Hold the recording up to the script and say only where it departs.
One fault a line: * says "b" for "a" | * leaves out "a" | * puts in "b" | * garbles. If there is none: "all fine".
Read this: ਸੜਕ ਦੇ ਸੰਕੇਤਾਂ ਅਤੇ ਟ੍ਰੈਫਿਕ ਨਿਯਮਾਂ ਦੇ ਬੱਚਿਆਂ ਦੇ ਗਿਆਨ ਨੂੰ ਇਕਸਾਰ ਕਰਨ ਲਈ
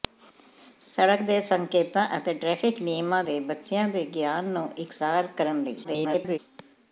* garbles